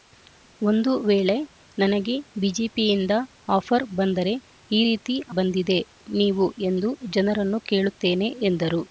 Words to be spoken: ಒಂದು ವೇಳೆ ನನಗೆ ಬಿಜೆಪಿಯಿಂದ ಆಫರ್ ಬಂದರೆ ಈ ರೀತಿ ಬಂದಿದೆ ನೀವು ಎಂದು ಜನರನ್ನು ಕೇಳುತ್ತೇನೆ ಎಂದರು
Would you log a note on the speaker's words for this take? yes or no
no